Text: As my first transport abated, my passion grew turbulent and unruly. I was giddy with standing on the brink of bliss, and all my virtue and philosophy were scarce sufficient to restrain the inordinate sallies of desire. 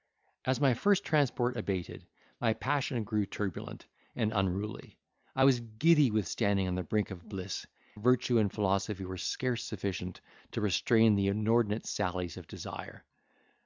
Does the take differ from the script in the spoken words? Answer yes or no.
yes